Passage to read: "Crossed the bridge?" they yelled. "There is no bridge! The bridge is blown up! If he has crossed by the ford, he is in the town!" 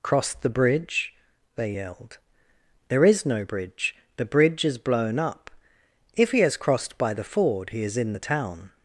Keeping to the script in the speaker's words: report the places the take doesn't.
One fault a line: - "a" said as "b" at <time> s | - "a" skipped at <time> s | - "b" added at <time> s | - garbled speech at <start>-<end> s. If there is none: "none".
none